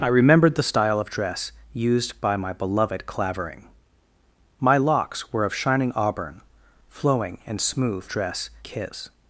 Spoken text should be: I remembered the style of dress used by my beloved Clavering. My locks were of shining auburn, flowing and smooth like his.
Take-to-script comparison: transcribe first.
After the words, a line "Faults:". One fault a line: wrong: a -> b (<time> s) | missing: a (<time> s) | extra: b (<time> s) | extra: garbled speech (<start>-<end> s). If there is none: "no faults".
I remembered the style of dress used by my beloved Clavering. My locks were of shining auburn, flowing and smooth dress his.
Faults:
wrong: like -> dress (8.1 s)